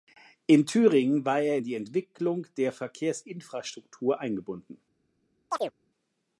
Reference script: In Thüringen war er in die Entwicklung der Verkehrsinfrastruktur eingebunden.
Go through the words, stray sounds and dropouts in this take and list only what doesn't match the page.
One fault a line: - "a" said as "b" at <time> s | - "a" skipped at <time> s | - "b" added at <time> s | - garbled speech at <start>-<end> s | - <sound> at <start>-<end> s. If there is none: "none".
- chirp at 5.5-5.7 s